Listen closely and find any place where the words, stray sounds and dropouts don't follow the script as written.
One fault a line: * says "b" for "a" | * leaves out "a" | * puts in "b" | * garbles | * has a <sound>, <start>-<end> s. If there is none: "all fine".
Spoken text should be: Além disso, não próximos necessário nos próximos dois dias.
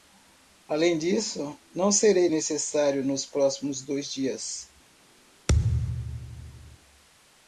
* says "serei" for "próximos"
* has a thud, 5.5-6.8 s